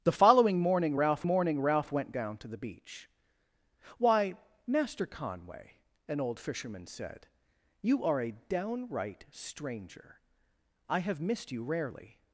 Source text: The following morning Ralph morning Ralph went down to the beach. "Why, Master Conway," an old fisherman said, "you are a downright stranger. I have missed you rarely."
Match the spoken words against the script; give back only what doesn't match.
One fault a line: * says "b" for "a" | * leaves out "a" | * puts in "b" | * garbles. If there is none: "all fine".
all fine